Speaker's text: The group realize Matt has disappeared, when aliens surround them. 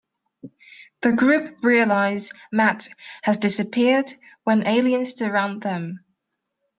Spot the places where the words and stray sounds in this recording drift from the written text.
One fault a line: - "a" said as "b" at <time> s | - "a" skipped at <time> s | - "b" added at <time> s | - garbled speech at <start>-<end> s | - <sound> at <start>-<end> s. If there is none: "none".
none